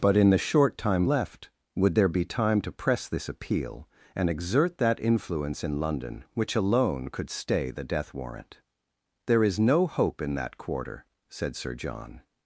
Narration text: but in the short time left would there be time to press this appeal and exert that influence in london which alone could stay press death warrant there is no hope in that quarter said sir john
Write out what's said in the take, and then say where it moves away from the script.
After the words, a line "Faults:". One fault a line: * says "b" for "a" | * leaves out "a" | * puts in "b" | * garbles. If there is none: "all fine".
but in the short time left would there be time to press this appeal and exert that influence in london which alone could stay the death warrant there is no hope in that quarter said sir john
Faults:
* says "the" for "press"